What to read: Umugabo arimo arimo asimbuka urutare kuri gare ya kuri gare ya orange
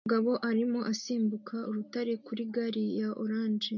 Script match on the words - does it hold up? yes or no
no